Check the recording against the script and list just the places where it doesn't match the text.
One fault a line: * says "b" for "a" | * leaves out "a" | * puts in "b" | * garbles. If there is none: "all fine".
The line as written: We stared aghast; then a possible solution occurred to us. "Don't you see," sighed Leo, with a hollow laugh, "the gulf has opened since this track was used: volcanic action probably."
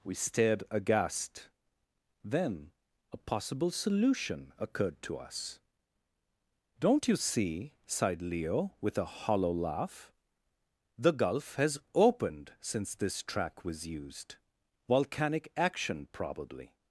all fine